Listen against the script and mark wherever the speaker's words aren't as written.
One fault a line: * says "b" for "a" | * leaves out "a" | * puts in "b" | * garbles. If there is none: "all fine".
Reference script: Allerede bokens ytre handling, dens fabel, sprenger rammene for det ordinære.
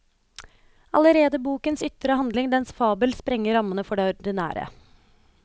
all fine